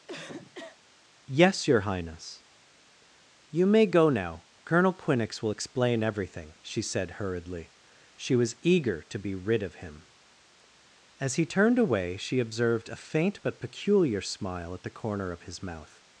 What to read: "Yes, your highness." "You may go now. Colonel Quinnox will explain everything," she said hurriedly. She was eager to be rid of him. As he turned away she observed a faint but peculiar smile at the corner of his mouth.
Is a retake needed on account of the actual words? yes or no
no